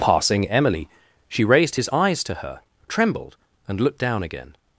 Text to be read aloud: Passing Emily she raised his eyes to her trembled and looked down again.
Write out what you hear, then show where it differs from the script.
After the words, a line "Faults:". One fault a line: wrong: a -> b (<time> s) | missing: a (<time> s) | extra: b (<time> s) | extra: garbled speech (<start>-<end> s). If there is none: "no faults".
Passing Emily she raised his eyes to her trembled and looked down again.
Faults:
no faults